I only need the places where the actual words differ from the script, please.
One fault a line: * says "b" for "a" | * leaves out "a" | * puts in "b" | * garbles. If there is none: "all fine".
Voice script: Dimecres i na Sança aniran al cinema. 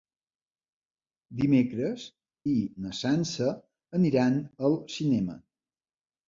all fine